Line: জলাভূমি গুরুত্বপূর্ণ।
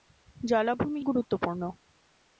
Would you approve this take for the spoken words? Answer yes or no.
yes